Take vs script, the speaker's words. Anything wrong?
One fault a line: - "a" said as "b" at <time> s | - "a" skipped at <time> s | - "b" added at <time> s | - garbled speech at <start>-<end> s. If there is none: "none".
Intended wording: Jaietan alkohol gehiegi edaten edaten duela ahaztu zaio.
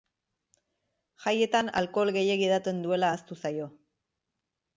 - "edaten" skipped at 2.8 s